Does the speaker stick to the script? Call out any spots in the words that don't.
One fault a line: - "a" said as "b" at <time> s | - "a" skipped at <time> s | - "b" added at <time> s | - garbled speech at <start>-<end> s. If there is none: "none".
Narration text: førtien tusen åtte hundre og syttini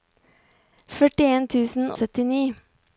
- "åtte hundre" skipped at 1.9 s